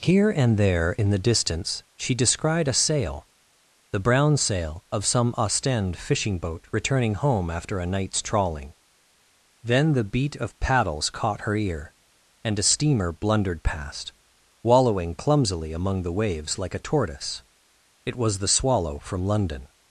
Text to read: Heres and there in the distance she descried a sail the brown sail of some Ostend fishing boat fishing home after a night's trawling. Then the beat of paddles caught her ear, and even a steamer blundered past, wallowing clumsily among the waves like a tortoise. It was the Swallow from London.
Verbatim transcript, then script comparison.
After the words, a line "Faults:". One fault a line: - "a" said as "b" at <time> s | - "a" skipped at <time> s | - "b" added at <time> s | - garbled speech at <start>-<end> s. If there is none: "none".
Here and there in the distance she descried a sail the brown sail of some Ostend fishing boat returning home after a night's trawling. Then the beat of paddles caught her ear, and a steamer blundered past, wallowing clumsily among the waves like a tortoise. It was the Swallow from London.
Faults:
- "Heres" said as "Here" at 0.0 s
- "fishing" said as "returning" at 6.7 s
- "even" skipped at 12.6 s